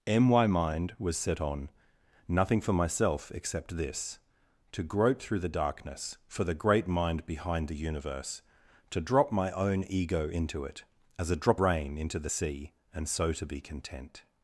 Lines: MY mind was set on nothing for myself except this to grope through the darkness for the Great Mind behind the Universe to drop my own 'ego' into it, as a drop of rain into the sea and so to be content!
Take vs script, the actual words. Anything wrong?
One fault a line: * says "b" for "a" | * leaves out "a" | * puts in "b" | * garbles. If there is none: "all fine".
* leaves out "of"